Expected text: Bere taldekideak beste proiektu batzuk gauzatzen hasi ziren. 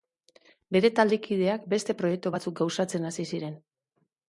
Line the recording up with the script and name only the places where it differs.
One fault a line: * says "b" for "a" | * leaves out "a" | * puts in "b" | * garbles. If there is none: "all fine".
all fine